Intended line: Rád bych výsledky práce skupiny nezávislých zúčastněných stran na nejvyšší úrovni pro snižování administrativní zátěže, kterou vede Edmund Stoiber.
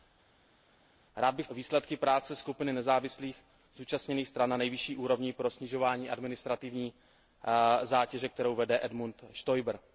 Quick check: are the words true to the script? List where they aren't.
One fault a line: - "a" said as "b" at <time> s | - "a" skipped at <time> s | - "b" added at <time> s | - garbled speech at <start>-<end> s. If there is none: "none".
none